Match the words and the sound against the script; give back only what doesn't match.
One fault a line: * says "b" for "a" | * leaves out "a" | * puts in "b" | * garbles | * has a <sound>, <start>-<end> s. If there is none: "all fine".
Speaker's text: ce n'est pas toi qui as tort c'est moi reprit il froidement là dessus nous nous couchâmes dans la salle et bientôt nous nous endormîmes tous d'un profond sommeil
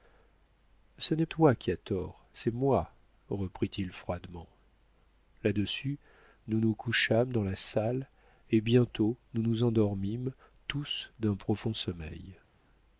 * leaves out "pas"